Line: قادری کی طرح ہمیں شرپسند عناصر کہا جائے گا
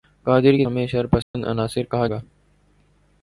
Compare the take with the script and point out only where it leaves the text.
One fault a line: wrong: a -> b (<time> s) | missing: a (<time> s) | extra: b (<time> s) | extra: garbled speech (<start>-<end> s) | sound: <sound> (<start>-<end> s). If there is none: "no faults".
missing: طرح (0.7 s)
sound: dropout (1.2-1.3 s)
missing: جائے (2.1 s)